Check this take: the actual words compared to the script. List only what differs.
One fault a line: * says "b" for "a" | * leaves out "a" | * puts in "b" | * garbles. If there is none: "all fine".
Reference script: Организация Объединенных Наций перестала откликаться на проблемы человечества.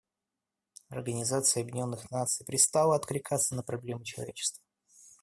all fine